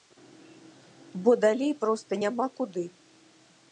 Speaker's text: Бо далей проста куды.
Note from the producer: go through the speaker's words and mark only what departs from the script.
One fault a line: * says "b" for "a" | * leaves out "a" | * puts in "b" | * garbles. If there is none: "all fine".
* puts in "няма"